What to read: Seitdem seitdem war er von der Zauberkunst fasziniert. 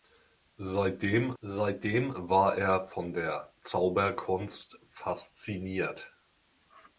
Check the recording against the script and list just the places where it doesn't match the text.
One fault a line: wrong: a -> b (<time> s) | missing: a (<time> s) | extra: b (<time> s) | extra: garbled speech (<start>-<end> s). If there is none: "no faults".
no faults